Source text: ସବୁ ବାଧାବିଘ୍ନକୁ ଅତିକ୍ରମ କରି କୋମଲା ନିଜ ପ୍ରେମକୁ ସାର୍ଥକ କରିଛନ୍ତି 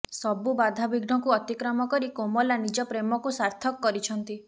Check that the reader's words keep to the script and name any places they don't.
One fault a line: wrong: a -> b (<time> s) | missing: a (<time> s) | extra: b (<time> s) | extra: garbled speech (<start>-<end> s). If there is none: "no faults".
no faults